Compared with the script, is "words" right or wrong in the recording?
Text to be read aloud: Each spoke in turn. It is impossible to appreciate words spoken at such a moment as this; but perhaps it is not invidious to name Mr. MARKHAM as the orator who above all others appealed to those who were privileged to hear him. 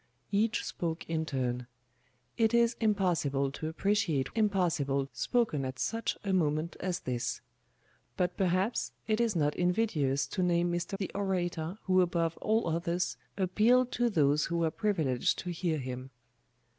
wrong